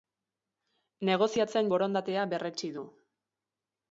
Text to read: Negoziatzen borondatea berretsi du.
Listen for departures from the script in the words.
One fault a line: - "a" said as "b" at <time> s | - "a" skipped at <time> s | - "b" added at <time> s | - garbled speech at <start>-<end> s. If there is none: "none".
none